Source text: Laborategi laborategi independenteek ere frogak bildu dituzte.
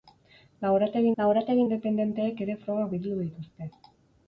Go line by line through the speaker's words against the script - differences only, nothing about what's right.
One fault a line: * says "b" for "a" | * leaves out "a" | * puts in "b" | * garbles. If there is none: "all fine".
all fine